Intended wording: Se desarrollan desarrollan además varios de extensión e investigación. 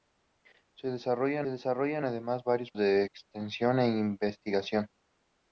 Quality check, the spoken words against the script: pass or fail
pass